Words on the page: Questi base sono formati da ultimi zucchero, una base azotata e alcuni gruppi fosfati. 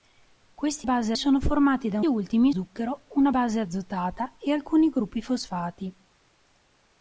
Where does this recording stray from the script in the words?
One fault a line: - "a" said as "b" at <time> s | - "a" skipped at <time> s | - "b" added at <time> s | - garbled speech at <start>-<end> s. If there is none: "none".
none